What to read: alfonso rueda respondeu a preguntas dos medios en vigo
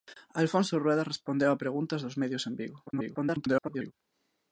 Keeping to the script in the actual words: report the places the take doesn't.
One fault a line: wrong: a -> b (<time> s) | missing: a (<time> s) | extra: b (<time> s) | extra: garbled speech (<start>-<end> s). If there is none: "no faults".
extra: garbled speech (2.9-3.9 s)